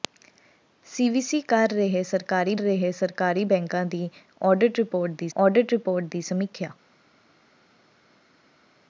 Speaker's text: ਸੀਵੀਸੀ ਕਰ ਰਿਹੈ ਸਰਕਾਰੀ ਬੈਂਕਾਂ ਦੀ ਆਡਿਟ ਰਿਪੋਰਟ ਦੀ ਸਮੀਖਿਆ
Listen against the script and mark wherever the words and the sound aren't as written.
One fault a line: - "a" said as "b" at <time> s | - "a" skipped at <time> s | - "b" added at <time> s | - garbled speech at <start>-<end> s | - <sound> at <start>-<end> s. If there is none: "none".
- "ਰਿਹੈ ਸਰਕਾਰੀ" added at 2.6 s
- "ਆਡਿਟ ਰਿਪੋਰਟ ਦੀ" added at 5.4 s